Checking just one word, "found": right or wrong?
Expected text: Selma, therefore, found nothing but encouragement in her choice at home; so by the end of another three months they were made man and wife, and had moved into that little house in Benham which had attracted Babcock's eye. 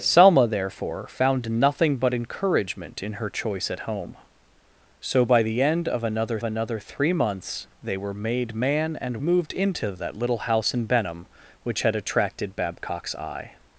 right